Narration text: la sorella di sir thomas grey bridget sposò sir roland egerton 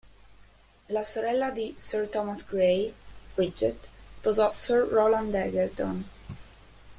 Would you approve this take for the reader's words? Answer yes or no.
yes